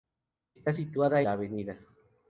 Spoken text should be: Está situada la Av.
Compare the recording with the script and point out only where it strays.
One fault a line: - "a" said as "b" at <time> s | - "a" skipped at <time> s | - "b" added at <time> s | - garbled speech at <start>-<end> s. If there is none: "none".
none